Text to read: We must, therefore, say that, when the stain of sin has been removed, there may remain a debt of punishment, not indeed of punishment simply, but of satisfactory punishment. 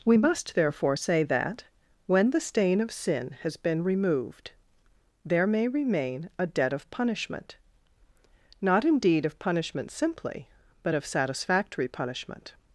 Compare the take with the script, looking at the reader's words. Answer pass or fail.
pass